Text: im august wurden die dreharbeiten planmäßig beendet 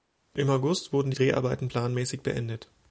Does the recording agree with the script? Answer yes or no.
yes